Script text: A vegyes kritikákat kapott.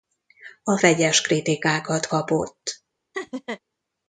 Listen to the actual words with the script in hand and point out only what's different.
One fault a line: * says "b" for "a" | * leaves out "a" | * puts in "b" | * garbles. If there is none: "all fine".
all fine